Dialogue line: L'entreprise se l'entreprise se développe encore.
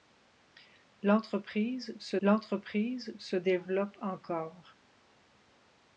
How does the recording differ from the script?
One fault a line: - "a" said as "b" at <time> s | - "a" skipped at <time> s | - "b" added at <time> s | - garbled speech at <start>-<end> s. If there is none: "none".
none